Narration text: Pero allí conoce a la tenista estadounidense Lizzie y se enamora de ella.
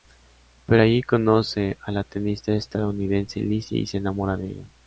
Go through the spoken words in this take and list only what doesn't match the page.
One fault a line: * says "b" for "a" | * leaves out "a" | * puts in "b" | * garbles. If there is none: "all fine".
all fine